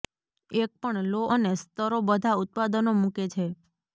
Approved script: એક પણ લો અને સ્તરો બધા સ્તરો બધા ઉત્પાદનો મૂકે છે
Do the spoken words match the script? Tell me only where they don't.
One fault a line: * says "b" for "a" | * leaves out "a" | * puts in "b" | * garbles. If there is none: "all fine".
* leaves out "સ્તરો બધા"